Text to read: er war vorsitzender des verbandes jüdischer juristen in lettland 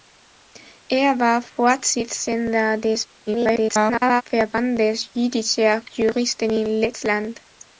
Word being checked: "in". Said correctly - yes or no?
yes